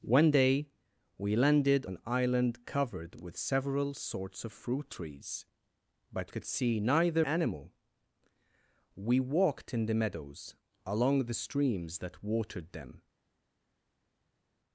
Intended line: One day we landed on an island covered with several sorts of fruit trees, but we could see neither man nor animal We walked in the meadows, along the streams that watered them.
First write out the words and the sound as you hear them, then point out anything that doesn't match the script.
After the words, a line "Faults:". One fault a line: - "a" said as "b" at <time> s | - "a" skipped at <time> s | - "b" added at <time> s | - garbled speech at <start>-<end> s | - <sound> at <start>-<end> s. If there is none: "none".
One day we landed an island covered with several sorts of fruit trees, but could see neither animal We walked in the meadows, along the streams that watered them.
Faults:
- "on" skipped at 1.9 s
- "we" skipped at 6.3 s
- "man nor" skipped at 7.2 s